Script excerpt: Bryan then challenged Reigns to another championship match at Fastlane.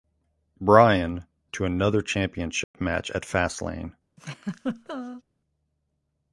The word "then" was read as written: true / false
false